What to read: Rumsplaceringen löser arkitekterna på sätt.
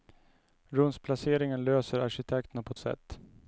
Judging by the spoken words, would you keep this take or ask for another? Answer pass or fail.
pass